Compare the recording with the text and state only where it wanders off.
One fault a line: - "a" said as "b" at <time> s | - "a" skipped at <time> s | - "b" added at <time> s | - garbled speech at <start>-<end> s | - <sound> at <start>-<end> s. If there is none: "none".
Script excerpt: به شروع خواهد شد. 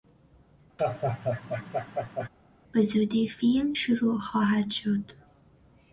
- laugh at 0.8-2.3 s
- "زودی فیلم" added at 2.8 s